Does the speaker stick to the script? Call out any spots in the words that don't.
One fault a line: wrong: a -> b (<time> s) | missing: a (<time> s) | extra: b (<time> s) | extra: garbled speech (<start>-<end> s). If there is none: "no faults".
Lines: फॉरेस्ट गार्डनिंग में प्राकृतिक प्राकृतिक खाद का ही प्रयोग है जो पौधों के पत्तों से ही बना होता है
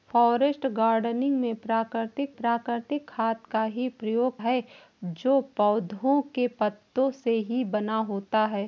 no faults